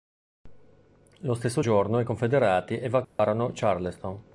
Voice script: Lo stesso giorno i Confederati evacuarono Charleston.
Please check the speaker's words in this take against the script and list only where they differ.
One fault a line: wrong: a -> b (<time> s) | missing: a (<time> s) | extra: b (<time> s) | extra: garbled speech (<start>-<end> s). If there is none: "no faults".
no faults